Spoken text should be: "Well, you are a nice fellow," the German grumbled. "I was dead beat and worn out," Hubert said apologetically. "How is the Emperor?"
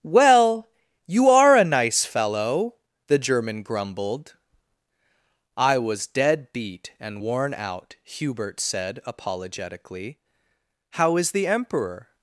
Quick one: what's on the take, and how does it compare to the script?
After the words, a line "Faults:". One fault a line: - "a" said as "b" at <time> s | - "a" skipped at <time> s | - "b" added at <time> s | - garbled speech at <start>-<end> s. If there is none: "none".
"Well, you are a nice fellow," the German grumbled. "I was dead beat and worn out," Hubert said apologetically. "How is the Emperor?"
Faults:
none